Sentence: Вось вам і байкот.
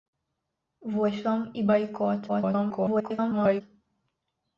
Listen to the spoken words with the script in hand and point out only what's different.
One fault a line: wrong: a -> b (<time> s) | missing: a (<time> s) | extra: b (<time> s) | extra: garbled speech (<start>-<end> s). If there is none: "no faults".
extra: garbled speech (2.3-3.6 s)